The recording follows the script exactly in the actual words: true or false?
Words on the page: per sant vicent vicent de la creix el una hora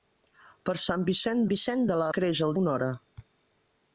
true